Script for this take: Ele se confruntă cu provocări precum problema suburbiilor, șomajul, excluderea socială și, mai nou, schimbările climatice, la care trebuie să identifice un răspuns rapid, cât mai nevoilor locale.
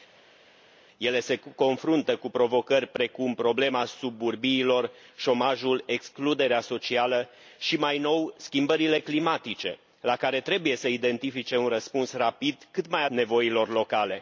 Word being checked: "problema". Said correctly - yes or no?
yes